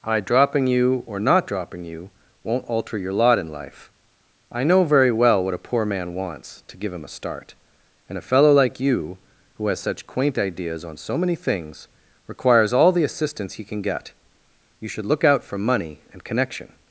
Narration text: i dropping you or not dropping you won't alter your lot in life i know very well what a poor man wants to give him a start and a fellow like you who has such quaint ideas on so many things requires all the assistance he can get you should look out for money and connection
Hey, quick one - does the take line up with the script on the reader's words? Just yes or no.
yes